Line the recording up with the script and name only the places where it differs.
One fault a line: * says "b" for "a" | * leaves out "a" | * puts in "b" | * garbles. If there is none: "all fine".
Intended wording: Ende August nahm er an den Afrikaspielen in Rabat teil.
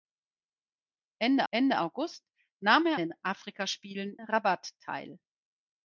* puts in "ende"
* leaves out "an"
* leaves out "in"